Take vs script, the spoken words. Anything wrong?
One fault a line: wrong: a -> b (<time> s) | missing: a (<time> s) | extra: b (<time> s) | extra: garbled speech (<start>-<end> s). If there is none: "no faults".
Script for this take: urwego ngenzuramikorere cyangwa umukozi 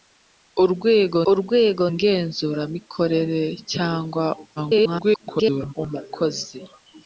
extra: urwego (1.3 s)
extra: garbled speech (4.6-5.7 s)